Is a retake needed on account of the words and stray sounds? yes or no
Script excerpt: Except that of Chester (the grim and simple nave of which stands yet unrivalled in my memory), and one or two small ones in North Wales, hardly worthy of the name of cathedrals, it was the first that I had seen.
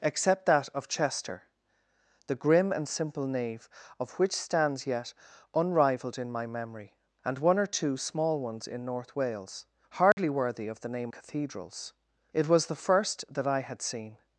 yes